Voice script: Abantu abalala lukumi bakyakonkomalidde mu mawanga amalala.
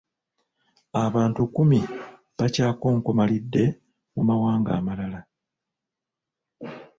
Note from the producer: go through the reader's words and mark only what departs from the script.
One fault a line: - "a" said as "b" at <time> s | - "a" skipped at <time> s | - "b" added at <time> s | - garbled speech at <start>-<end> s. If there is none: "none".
- "abalala" skipped at 1.4 s